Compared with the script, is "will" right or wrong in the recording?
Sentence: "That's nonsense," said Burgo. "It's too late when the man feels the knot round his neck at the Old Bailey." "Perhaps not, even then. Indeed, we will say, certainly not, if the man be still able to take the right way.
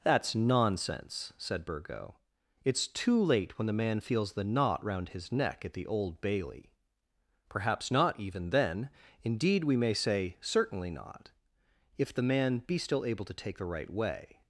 wrong